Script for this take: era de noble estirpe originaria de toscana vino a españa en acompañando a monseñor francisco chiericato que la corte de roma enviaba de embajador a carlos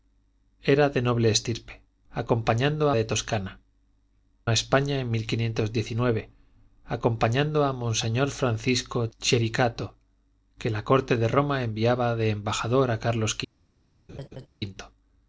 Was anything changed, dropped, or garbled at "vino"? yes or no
yes